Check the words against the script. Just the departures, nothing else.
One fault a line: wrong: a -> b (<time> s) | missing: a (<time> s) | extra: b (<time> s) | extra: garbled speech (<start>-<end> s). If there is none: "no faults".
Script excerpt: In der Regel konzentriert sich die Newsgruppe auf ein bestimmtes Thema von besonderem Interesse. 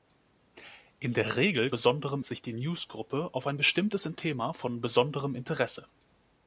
wrong: konzentriert -> besonderem (1.7 s)